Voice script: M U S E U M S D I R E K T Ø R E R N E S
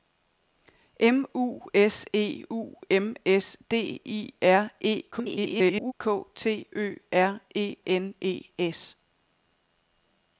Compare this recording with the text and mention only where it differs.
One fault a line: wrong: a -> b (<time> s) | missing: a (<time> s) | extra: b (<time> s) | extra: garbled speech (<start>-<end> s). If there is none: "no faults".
extra: garbled speech (5.1-5.9 s)
missing: R (7.7 s)